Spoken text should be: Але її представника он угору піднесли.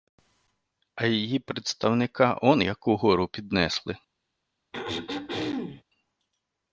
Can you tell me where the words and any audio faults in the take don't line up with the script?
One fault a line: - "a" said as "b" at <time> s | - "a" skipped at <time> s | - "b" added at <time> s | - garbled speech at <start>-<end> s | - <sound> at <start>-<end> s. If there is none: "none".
- "Але" said as "А" at 0.9 s
- "як" added at 2.6 s
- throat clearing at 4.7-5.8 s